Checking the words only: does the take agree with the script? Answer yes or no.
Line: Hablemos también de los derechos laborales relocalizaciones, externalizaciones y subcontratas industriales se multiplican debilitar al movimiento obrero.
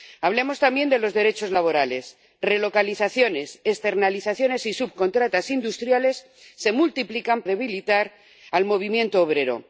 yes